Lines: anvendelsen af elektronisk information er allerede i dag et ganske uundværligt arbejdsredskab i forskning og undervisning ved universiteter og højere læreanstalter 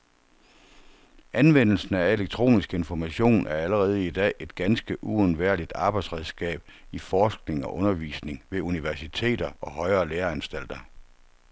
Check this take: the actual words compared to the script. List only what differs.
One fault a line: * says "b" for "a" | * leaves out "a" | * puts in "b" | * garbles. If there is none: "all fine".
all fine